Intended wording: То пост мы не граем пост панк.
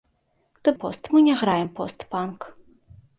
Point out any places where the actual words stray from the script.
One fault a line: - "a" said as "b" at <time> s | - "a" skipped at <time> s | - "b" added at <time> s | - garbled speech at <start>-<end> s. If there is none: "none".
none